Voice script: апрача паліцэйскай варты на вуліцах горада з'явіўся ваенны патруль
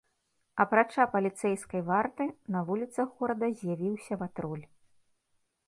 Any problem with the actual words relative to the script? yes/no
yes